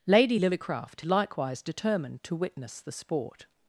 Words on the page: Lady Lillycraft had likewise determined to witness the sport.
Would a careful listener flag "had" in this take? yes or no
yes